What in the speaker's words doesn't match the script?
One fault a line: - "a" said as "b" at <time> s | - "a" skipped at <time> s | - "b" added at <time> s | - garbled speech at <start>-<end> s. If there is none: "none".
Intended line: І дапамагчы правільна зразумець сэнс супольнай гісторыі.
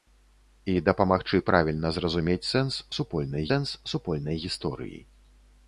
- "сэнс супольнай" added at 3.5 s